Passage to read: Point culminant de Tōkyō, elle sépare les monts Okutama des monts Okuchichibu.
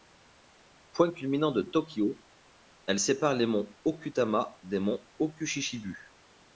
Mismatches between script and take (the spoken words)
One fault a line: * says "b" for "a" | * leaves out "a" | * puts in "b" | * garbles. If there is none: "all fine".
all fine